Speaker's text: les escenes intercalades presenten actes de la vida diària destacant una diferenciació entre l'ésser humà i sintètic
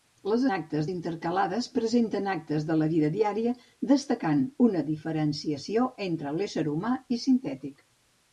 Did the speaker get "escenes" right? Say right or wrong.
wrong